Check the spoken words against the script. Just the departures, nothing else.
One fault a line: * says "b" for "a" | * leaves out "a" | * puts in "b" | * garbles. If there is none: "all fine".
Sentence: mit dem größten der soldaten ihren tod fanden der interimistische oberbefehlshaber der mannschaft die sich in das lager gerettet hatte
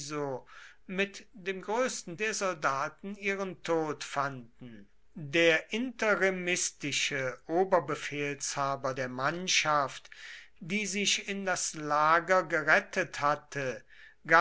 all fine